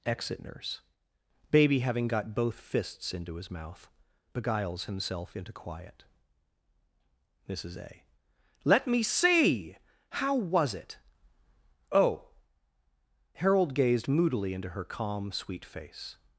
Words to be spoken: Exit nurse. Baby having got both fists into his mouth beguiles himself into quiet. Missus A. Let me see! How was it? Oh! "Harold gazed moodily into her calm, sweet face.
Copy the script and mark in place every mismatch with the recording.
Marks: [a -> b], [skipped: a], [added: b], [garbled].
Exit nurse. Baby having got both fists into his mouth beguiles himself into quiet. Missus A. Let me see! How was it? Oh! "Harold gazed moodily into her calm, sweet face.